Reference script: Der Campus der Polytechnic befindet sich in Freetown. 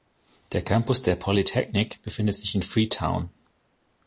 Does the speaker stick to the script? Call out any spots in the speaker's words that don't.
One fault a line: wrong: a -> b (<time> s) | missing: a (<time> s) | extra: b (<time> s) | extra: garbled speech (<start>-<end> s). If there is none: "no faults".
no faults